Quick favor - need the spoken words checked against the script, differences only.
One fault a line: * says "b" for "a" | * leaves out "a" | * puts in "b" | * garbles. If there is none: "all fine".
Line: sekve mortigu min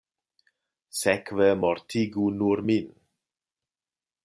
* puts in "nur"